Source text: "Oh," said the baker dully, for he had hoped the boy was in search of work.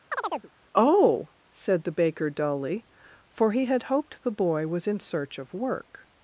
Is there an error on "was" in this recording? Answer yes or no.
no